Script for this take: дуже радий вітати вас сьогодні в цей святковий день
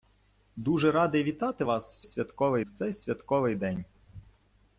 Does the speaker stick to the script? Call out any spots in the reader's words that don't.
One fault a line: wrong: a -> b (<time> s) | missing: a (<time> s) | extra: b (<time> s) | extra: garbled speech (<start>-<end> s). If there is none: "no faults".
wrong: сьогодні -> святковий (2.0 s)